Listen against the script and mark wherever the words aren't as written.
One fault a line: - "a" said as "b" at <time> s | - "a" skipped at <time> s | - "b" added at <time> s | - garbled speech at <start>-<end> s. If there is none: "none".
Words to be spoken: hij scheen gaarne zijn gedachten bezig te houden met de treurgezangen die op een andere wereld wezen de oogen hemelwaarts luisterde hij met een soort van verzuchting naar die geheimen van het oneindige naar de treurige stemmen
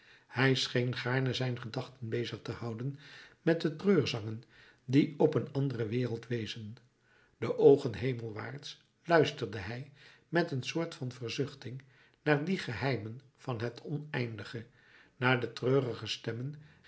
none